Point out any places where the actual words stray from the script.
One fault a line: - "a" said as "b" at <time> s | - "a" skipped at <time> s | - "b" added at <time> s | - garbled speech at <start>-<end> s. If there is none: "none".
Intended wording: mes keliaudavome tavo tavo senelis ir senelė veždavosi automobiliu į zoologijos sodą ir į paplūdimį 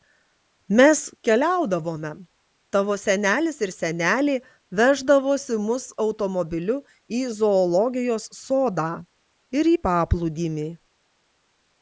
- "tavo" skipped at 3.0 s
- "mus" added at 5.7 s